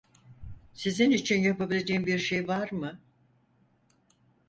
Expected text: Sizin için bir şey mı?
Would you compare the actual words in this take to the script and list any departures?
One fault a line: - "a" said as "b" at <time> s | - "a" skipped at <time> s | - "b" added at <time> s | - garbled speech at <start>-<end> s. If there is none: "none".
- "yapabileceğim" added at 1.4 s
- "var" added at 2.5 s